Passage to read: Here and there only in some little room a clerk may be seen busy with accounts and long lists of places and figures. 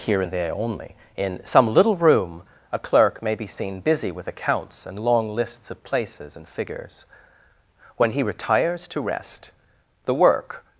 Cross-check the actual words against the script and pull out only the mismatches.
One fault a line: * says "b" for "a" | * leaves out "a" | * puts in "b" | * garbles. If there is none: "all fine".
* puts in "When he retires to rest the work"